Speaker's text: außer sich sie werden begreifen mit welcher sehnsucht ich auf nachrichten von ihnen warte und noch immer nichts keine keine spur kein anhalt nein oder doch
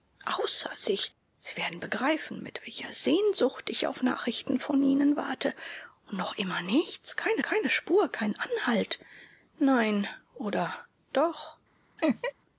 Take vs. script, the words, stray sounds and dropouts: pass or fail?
fail